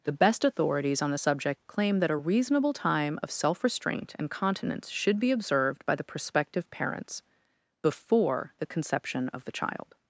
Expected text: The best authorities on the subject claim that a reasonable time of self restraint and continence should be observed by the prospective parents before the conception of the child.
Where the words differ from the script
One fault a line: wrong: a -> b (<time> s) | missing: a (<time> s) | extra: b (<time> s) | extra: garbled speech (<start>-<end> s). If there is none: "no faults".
no faults